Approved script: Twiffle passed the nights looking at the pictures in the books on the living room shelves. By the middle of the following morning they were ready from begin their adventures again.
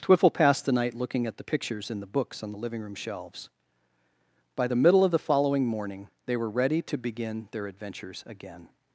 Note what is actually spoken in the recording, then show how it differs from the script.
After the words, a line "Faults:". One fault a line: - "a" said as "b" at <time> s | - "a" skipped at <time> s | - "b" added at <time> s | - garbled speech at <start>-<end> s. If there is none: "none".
Twiffle passed the night looking at the pictures in the books on the living room shelves. By the middle of the following morning they were ready to begin their adventures again.
Faults:
- "nights" said as "night" at 0.7 s
- "from" said as "to" at 6.8 s